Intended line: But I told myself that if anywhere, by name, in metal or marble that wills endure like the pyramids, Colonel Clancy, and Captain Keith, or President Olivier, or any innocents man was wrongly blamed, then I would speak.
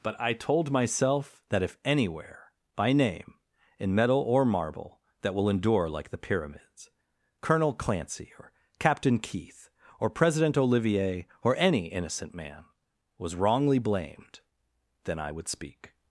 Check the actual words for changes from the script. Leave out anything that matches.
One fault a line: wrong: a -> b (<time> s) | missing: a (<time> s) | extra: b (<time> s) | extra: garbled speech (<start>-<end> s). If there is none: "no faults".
wrong: wills -> will (5.3 s)
wrong: and -> or (8.4 s)
wrong: innocents -> innocent (11.9 s)